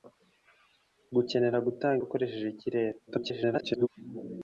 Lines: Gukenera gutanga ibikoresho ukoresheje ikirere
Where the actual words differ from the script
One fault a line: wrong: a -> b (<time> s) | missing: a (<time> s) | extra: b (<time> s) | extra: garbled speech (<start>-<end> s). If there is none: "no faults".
missing: ibikoresho (2.0 s)
extra: garbled speech (3.1-3.9 s)